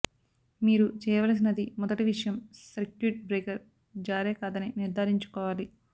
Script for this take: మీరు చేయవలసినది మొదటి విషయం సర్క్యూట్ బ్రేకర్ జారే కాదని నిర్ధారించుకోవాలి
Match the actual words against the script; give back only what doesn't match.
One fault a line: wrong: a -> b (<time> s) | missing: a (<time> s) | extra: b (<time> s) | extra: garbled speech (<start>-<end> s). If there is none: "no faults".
no faults